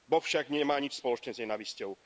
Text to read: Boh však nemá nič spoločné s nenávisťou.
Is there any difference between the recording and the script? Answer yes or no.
no